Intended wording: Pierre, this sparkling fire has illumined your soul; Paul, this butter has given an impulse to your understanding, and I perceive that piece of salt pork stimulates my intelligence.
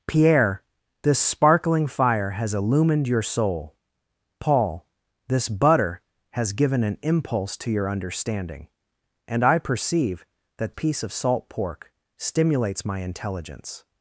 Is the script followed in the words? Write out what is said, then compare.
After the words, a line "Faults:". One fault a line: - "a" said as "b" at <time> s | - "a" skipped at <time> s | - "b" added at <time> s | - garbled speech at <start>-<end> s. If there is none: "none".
Pierre, this sparkling fire has illumined your soul; Paul, this butter has given an impulse to your understanding, and I perceive that piece of salt pork stimulates my intelligence.
Faults:
none